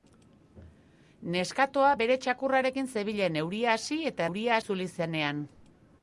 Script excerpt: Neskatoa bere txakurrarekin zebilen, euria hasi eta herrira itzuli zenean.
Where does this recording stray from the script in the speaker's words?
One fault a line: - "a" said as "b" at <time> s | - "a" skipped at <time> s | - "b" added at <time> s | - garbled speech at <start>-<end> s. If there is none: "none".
- "herrira" said as "euria" at 4.3 s